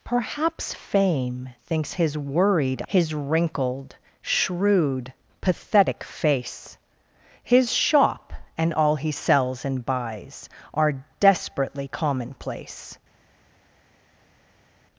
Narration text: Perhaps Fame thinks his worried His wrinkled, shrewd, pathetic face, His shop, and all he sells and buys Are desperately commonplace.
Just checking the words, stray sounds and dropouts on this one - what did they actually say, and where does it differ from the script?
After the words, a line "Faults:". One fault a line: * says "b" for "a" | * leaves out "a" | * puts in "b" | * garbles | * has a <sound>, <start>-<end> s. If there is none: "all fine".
Perhaps Fame thinks his worried His wrinkled, shrewd, pathetic face, His shop, and all he sells and buys Are desperately commonplace.
Faults:
all fine